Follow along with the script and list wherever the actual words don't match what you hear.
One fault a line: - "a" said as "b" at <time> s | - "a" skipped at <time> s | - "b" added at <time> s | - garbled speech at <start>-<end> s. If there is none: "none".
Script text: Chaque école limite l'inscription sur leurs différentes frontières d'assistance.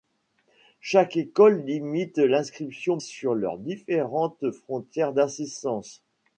none